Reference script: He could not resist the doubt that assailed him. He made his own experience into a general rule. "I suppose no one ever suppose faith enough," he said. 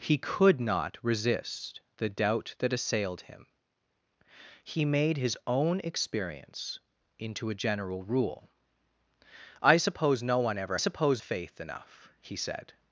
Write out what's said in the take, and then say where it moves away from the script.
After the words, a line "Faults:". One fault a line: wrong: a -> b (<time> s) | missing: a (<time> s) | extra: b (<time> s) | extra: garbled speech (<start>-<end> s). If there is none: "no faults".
He could not resist the doubt that assailed him. He made his own experience into a general rule. "I suppose no one ever suppose faith enough," he said.
Faults:
no faults